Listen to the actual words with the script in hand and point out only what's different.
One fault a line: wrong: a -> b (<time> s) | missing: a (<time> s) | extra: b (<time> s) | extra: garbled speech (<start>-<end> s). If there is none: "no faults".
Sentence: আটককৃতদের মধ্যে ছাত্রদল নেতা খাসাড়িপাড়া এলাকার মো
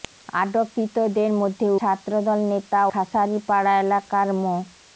no faults